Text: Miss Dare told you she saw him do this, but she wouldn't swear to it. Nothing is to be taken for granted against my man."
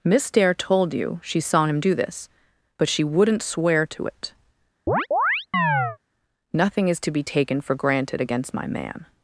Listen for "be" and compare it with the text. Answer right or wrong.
right